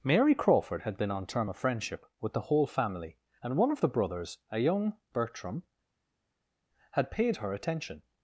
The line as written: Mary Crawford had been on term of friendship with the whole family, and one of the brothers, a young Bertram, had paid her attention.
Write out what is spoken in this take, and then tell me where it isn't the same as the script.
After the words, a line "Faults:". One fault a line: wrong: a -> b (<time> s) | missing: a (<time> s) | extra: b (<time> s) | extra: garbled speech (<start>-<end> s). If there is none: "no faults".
Mary Crawford had been on term of friendship with the whole family, and one of the brothers, a young Bertram, had paid her attention.
Faults:
no faults